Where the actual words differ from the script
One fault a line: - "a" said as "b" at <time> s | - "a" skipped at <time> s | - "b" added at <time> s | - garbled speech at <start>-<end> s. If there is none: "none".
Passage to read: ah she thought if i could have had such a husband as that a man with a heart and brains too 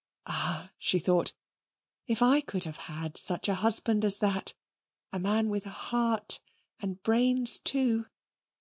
none